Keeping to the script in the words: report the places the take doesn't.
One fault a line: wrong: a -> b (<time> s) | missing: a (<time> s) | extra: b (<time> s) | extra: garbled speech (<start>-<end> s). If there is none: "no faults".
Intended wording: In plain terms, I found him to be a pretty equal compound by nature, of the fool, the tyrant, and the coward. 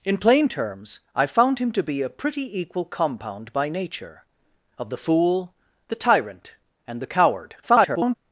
extra: garbled speech (7.6-8.2 s)